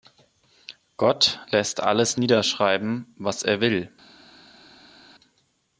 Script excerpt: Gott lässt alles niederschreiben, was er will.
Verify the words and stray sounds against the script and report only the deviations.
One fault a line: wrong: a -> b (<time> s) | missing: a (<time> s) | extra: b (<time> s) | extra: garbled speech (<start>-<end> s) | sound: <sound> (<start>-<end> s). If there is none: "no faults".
no faults